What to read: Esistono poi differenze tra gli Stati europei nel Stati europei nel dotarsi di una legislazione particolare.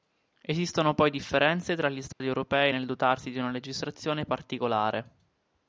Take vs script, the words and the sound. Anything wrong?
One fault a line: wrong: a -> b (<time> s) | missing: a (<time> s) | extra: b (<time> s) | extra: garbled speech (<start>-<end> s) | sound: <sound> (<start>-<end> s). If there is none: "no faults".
sound: dropout (2.1-2.2 s)
missing: Stati europei nel (2.8 s)